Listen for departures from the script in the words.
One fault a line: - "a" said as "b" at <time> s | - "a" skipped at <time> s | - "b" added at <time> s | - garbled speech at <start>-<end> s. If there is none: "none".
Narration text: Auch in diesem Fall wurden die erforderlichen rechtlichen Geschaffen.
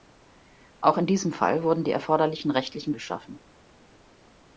none